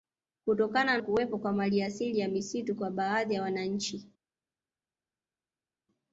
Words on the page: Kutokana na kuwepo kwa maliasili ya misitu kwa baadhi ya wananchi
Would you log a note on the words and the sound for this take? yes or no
yes